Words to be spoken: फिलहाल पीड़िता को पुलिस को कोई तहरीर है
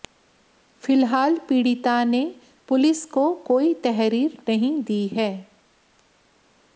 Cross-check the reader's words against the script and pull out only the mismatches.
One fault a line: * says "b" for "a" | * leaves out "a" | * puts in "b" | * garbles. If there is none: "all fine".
* says "ने" for "को"
* puts in "नहीं दी"